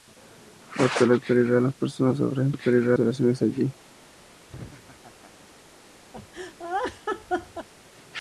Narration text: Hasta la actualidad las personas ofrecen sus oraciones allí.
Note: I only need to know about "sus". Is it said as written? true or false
false